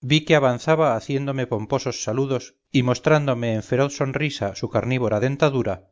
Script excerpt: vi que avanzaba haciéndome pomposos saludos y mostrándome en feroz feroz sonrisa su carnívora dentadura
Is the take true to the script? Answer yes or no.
no